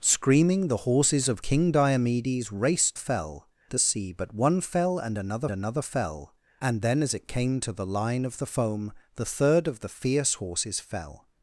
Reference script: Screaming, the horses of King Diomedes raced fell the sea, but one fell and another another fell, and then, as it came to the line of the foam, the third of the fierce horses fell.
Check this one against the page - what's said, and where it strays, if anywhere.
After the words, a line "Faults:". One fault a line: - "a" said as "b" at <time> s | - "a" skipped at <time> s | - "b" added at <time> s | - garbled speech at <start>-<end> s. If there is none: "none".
Screaming, the horses of King Diomedes raced fell the sea, but one fell and another another fell, and then, as it came to the line of the foam, the third of the fierce horses fell.
Faults:
none